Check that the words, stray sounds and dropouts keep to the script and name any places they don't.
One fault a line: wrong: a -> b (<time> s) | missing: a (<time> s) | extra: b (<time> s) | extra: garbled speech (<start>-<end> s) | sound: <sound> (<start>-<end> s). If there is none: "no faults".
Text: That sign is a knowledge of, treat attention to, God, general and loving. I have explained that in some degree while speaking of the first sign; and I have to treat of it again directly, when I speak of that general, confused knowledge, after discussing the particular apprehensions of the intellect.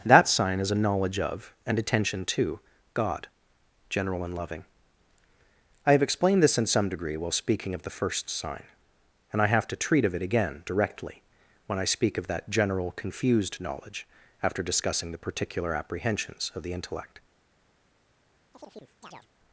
wrong: treat -> and (1.6 s)
wrong: that -> this (6.4 s)
sound: chirp (18.5-19.3 s)